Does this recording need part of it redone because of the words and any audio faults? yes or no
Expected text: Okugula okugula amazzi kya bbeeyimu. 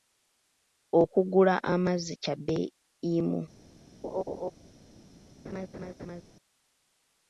yes